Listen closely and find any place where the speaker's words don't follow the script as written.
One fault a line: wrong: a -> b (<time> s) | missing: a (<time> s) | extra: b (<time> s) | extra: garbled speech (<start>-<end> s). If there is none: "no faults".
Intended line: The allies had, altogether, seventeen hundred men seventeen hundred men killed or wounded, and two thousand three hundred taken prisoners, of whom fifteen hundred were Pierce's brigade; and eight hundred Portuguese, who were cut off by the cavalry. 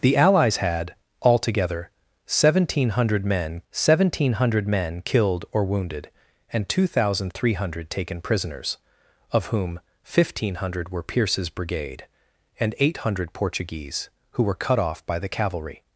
no faults